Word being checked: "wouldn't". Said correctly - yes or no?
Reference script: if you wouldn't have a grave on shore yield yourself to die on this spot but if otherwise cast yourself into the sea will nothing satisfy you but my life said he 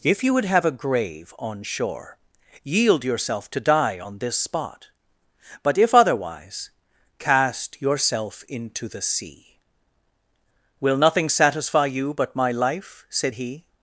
no